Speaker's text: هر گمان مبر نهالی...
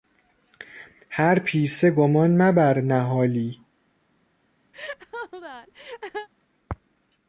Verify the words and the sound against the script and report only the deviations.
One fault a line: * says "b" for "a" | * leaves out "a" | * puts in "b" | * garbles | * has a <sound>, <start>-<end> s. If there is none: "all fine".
* puts in "پیسه"
* has a laugh, 4.7-6.3 s